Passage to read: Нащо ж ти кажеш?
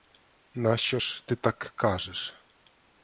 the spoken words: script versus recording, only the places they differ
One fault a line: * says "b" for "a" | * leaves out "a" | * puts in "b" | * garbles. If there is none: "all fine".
* puts in "так"